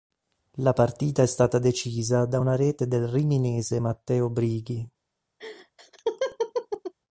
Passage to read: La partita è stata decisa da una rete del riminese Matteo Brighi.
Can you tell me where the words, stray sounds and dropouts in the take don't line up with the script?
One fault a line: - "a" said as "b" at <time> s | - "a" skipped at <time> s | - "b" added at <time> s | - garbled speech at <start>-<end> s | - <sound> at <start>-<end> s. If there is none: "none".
- laugh at 5.4-6.9 s